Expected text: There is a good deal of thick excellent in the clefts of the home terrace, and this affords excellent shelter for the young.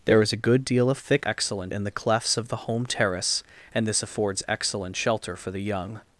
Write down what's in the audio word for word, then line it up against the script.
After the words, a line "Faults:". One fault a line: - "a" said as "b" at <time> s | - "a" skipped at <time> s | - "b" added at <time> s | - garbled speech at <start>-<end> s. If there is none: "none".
There is a good deal of thick excellent in the clefts of the home terrace, and this affords excellent shelter for the young.
Faults:
none